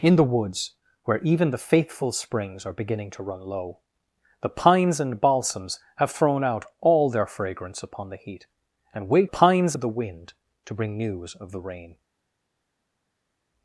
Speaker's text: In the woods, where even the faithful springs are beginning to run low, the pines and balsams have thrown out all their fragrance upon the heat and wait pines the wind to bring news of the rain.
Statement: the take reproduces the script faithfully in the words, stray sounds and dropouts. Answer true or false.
true